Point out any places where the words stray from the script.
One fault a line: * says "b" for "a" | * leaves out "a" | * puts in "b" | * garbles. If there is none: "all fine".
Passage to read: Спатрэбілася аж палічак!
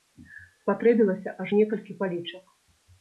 * puts in "некалькі"